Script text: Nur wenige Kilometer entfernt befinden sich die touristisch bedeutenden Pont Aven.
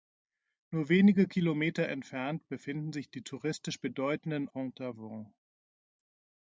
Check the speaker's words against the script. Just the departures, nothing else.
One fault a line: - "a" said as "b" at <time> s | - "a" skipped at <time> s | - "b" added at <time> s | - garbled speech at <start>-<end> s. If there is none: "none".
none